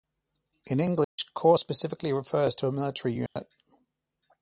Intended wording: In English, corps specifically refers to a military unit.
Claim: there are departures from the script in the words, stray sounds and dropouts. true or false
true